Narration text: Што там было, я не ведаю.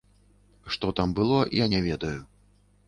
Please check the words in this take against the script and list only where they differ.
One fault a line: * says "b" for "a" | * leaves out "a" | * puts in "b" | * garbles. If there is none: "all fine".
all fine